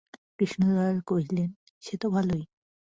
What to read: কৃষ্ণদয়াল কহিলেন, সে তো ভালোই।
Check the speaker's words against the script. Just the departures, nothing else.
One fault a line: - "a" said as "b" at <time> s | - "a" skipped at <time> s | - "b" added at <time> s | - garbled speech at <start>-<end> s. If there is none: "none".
none